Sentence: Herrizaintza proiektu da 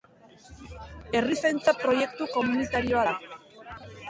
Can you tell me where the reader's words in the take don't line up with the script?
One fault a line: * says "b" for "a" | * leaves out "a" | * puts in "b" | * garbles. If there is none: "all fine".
* puts in "komunitarioa"